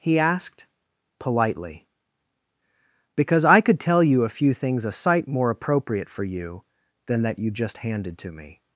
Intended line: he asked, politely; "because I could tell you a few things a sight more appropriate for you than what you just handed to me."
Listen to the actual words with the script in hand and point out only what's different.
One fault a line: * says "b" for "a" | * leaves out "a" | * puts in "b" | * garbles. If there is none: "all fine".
* says "that" for "what"